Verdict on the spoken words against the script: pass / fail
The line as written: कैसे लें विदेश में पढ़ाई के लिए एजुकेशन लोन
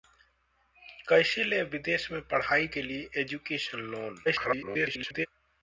fail